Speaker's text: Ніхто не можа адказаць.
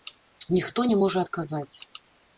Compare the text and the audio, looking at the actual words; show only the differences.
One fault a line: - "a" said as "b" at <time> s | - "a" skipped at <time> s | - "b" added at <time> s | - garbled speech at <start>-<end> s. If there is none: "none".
none